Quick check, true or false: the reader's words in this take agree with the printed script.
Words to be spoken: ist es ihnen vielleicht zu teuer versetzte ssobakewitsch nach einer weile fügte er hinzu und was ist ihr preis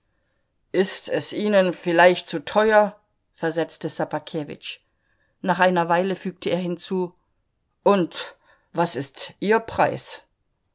true